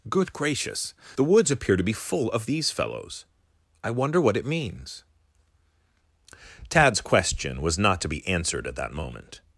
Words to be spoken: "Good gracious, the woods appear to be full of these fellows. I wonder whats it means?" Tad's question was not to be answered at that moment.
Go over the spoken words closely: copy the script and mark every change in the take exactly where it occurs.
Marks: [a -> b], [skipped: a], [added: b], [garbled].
"Good gracious, the woods appear to be full of these fellows. I wonder [whats -> what] it means?" Tad's question was not to be answered at that moment.